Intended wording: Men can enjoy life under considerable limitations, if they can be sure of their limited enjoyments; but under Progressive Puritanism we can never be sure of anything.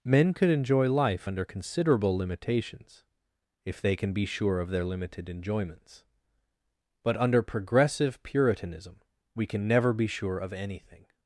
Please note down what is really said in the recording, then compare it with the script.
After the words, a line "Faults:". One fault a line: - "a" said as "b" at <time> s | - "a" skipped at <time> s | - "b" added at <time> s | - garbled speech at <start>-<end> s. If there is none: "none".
Men could enjoy life under considerable limitations, if they can be sure of their limited enjoyments; but under Progressive Puritanism we can never be sure of anything.
Faults:
- "can" said as "could" at 0.3 s